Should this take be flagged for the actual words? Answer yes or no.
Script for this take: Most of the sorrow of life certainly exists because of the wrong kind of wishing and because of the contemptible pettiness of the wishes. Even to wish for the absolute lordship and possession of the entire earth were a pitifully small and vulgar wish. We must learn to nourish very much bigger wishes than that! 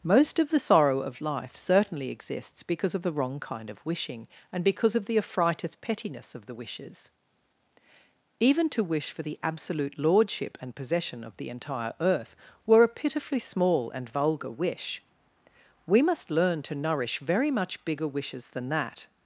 yes